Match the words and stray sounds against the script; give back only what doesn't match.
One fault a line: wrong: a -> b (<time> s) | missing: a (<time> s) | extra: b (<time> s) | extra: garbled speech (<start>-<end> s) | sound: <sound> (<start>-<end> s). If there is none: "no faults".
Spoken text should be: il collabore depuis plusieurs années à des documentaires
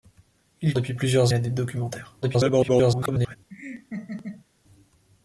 missing: collabore (0.7 s)
missing: années (1.3 s)
extra: garbled speech (2.2-3.4 s)
sound: laugh (3.5-4.5 s)